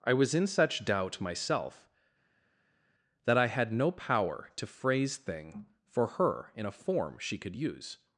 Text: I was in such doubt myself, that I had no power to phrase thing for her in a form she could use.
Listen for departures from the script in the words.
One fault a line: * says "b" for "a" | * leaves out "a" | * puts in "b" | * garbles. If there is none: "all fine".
all fine